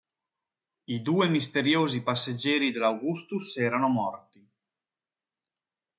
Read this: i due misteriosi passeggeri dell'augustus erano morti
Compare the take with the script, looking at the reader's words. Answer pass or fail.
pass